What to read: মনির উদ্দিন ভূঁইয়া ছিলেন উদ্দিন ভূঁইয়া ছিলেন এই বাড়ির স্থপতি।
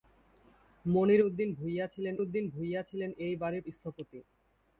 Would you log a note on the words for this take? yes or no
no